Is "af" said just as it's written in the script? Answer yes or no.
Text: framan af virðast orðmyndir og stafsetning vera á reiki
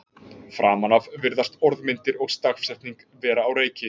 yes